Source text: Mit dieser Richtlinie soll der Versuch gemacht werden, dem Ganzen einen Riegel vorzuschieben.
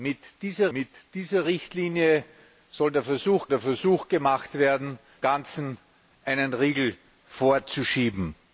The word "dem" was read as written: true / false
false